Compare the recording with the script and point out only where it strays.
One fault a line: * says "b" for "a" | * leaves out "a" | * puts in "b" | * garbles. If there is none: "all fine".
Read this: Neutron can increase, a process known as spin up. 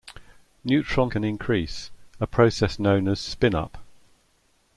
all fine